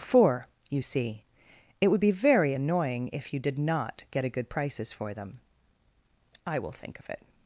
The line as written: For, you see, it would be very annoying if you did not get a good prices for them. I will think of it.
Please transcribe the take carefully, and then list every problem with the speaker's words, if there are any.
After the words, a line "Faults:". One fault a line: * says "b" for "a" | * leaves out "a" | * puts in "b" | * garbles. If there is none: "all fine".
For, you see, it would be very annoying if you did not get a good prices for them. I will think of it.
Faults:
all fine